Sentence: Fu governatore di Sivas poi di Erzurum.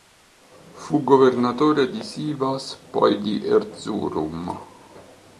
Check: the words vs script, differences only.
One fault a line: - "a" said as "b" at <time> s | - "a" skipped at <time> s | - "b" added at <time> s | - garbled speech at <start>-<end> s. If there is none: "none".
none